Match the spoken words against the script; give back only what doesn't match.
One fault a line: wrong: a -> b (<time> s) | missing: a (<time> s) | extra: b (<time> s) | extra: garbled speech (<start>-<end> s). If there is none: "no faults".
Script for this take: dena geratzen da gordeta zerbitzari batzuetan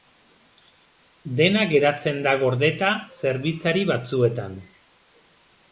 no faults